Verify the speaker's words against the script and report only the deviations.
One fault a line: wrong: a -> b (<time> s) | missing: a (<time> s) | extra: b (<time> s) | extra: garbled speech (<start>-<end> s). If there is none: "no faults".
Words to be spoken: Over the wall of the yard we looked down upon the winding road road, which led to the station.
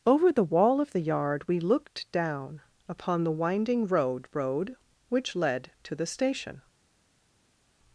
no faults